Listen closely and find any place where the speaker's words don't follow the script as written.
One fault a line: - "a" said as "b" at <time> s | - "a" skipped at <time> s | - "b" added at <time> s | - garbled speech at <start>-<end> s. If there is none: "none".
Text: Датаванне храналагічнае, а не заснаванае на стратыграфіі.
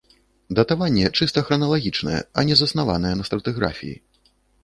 - "чыста" added at 1.2 s